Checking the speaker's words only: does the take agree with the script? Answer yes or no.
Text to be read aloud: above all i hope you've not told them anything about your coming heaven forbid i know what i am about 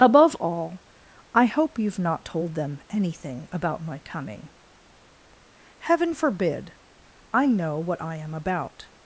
no